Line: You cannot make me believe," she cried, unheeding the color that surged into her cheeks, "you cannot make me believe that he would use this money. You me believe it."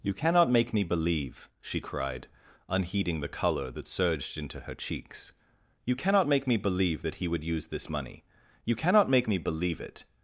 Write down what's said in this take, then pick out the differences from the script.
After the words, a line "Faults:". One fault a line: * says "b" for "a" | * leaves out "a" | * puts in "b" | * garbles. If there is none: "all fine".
You cannot make me believe," she cried, unheeding the color that surged into her cheeks, "you cannot make me believe that he would use this money. You cannot make me believe it."
Faults:
* puts in "cannot make"